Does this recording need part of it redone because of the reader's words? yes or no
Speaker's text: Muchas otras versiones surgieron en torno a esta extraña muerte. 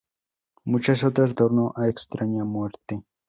yes